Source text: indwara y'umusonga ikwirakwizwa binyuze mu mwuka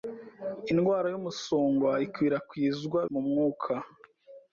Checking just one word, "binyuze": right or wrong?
wrong